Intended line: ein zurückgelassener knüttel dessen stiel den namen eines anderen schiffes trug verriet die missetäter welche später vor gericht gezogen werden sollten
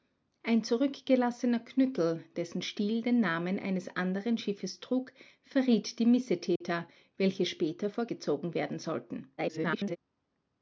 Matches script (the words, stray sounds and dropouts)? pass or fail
fail